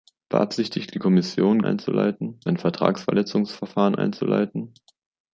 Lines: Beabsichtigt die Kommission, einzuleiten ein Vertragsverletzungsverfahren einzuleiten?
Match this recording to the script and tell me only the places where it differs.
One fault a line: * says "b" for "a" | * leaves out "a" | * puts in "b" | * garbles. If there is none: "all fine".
all fine